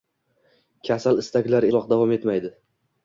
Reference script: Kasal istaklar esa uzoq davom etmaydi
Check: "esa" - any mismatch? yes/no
yes